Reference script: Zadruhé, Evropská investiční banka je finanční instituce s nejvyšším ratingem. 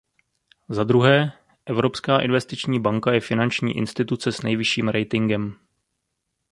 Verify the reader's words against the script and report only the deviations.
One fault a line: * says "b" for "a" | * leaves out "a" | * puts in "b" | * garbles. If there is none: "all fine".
all fine